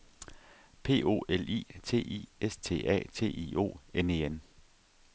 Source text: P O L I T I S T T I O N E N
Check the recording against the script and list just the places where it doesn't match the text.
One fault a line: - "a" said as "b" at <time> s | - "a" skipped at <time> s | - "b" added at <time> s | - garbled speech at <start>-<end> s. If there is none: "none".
- "A" added at 2.9 s